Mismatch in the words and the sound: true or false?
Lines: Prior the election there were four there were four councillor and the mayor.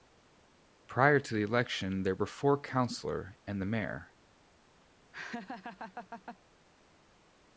true